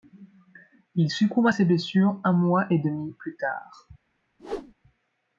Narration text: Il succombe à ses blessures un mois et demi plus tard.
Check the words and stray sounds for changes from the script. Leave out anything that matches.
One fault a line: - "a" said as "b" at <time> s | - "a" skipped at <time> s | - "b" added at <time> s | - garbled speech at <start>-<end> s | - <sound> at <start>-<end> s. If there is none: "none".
- whoosh at 4.4-4.7 s